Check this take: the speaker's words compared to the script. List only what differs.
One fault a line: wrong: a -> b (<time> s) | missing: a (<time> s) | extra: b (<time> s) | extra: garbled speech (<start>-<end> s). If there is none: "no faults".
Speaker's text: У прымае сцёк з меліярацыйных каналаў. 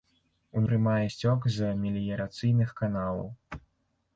no faults